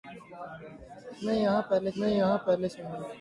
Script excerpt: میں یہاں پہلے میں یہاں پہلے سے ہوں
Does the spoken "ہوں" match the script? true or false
true